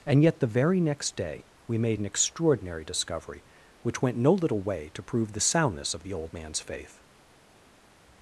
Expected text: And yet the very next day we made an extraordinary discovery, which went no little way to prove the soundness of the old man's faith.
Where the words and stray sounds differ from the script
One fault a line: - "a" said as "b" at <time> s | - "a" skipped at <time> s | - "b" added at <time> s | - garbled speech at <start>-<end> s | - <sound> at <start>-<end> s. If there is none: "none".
none